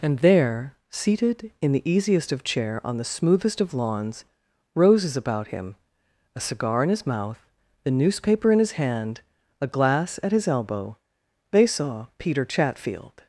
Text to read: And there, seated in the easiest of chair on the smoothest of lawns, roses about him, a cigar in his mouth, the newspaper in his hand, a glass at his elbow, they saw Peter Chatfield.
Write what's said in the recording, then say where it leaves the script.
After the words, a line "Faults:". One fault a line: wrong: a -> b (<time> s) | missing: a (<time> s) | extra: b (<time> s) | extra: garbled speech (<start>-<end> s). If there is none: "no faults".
And there, seated in the easiest of chair on the smoothest of lawns, roses about him, a cigar in his mouth, the newspaper in his hand, a glass at his elbow, they saw Peter Chatfield.
Faults:
no faults